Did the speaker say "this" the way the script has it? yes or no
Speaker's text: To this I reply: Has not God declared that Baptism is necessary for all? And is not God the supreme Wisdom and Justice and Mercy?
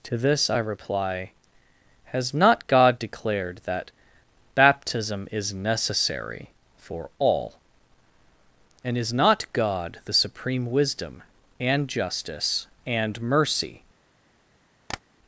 yes